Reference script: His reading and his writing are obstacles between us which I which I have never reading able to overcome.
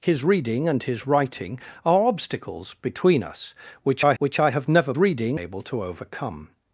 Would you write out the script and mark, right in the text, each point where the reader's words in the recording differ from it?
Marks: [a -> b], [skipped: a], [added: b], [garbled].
His reading and his writing are obstacles between us which I which I have never reading able to overcome.